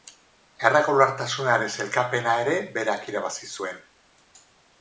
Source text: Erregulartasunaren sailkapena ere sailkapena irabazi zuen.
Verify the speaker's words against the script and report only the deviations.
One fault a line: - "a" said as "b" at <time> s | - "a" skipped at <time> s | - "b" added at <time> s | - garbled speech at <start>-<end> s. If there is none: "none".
- "sailkapena" said as "berak" at 2.8 s